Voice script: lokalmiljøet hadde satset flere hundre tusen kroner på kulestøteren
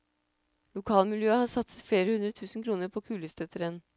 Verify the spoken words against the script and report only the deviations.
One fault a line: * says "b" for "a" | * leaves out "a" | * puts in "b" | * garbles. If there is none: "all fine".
* says "har" for "hadde"